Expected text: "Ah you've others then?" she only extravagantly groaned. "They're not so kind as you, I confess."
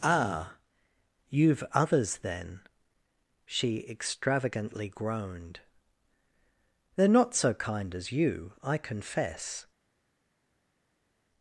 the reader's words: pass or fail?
fail